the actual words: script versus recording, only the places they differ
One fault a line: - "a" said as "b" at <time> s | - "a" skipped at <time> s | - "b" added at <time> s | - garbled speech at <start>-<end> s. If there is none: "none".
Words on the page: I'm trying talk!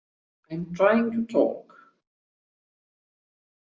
- "to" added at 1.1 s